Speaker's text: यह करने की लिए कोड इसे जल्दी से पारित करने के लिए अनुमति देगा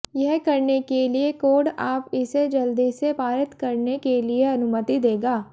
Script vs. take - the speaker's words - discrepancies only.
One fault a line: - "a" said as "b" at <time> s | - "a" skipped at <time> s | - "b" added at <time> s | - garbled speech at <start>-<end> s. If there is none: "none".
- "की" said as "के" at 0.8 s
- "आप" added at 1.8 s